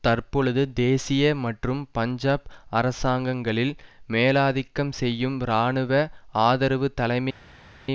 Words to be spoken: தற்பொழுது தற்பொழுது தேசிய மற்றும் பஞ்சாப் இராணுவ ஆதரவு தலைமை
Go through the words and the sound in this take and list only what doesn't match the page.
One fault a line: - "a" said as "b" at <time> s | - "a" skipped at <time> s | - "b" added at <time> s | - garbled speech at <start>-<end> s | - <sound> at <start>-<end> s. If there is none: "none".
- "தற்பொழுது" skipped at 0.6 s
- "அரசாங்கங்களில் மேலாதிக்கம் செய்யும்" added at 2.7 s